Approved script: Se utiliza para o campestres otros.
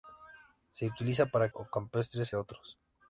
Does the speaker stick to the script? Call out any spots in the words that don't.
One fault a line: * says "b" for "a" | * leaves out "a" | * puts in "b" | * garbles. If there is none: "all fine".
all fine